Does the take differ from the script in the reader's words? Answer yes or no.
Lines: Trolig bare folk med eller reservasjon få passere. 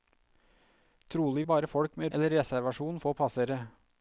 no